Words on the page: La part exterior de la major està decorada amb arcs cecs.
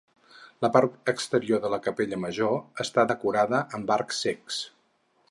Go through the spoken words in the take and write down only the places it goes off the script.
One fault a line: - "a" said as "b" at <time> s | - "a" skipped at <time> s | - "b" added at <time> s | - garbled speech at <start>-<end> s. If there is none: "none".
- "capella" added at 1.9 s